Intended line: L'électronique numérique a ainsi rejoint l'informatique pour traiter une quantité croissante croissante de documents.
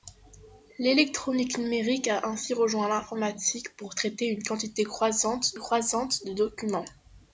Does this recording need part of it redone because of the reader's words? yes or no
no